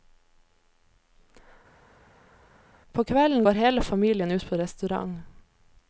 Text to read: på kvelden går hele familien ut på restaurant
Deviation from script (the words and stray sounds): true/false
false